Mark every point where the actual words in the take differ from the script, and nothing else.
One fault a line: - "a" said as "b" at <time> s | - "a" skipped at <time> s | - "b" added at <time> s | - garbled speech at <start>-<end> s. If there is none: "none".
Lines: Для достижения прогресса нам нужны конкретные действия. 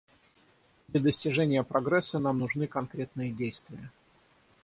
none